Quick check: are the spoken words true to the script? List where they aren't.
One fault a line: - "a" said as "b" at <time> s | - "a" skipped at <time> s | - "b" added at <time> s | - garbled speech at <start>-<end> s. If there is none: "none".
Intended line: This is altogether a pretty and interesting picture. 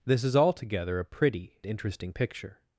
- "and" skipped at 1.6 s